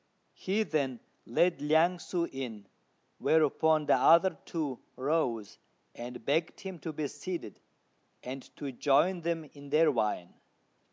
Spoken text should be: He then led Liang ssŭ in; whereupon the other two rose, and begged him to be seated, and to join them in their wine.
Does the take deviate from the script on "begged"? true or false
false